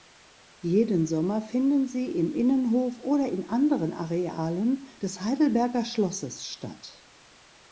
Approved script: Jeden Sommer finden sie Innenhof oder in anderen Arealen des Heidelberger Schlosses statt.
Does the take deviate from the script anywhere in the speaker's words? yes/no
yes